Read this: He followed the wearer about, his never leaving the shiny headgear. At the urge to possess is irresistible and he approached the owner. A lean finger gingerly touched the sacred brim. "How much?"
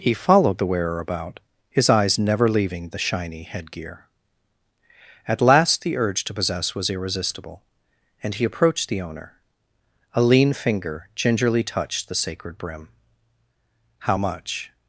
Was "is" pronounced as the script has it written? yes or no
no